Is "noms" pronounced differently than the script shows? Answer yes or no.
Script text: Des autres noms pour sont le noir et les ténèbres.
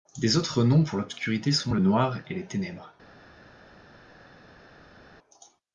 no